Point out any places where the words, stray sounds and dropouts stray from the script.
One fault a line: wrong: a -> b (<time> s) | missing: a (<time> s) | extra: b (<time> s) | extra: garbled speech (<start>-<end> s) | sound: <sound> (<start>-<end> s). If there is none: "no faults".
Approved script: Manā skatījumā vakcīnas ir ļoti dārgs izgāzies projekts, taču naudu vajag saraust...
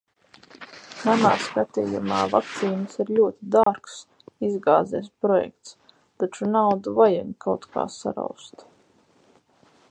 sound: dropout (3.6-3.7 s)
extra: kaut kā (7.5 s)